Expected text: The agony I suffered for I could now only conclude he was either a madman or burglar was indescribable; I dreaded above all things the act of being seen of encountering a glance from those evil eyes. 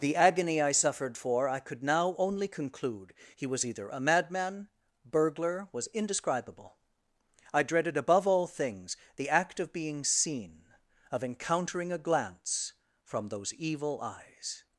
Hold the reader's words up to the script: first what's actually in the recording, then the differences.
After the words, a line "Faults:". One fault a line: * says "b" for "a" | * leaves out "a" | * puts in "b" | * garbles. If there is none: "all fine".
The agony I suffered for I could now only conclude he was either a madman burglar was indescribable; I dreaded above all things the act of being seen of encountering a glance from those evil eyes.
Faults:
* leaves out "or"